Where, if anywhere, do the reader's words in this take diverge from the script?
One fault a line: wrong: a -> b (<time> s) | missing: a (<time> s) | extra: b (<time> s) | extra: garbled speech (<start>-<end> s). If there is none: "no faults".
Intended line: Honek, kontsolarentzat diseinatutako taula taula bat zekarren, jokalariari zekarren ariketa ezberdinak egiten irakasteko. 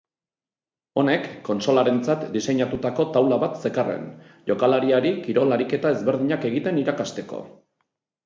missing: taula (3.4 s)
wrong: zekarren -> kirol (5.2 s)